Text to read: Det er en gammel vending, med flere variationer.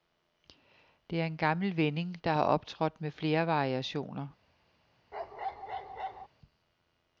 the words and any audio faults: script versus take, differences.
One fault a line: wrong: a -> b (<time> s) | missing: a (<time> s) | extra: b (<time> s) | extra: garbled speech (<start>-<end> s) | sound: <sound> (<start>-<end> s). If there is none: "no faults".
extra: der har optrådt (2.2 s)
sound: bark (5.1-6.3 s)